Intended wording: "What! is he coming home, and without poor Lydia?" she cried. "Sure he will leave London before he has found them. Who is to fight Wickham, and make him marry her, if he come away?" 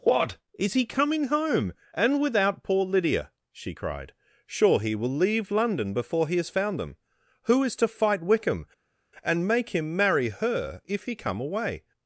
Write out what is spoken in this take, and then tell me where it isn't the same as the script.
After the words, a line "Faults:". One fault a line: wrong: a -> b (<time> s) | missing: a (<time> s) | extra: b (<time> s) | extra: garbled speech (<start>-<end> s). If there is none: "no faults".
"What! is he coming home, and without poor Lydia?" she cried. "Sure he will leave London before he has found them. Who is to fight Wickham, and make him marry her, if he come away?"
Faults:
no faults